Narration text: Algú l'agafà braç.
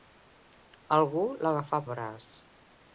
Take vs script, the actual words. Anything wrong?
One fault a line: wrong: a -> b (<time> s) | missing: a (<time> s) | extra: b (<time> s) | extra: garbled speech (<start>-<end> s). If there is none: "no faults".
no faults